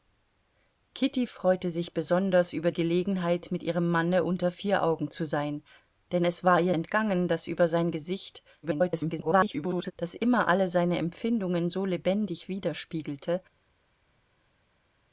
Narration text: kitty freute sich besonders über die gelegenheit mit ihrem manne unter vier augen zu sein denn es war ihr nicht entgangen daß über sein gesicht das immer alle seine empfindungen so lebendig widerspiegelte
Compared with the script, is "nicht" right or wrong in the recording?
wrong